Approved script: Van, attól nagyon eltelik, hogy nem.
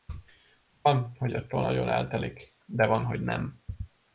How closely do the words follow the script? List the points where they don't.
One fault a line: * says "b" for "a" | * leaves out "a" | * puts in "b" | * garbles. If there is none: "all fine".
* puts in "hogy"
* puts in "de van"